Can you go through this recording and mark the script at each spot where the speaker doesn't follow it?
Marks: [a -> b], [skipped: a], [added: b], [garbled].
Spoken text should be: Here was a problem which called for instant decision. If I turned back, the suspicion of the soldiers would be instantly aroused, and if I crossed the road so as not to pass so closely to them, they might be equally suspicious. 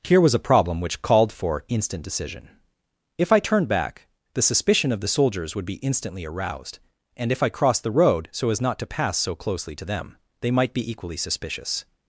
Here was a problem which called for instant decision. If I turned back, the suspicion of the soldiers would be instantly aroused, and if I crossed the road so as not to pass so closely to them, they might be equally suspicious.